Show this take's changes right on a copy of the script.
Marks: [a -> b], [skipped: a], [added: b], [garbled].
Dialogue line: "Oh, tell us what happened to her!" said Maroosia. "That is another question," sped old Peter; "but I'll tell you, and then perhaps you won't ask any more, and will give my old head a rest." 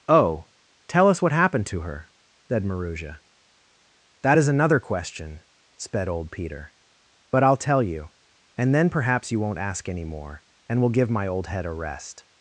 "Oh, tell us what happened to her!" said Maroosia. "That is another question," sped old Peter; "but I'll tell you, and then perhaps you won't ask any more, and will give my old head a rest."